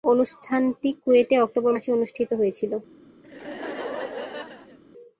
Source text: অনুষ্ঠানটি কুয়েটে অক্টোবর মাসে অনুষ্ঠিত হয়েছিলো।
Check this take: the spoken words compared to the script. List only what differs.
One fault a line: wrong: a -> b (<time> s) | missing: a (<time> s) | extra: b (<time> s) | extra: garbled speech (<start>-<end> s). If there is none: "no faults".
no faults